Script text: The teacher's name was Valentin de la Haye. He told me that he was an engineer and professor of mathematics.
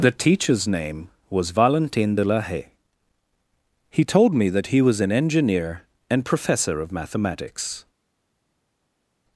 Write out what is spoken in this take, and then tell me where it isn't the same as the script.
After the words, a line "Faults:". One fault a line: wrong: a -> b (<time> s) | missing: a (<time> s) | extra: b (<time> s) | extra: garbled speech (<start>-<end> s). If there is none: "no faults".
The teacher's name was Valentin de la Haye. He told me that he was an engineer and professor of mathematics.
Faults:
no faults